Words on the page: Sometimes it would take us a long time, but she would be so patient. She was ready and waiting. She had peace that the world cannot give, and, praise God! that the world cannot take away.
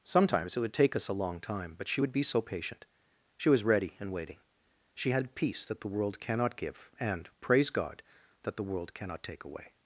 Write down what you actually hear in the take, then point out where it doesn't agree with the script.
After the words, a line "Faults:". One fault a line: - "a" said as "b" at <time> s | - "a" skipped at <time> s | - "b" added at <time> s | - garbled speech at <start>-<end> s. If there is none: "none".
Sometimes it would take us a long time, but she would be so patient. She was ready and waiting. She had peace that the world cannot give, and, praise God! that the world cannot take away.
Faults:
none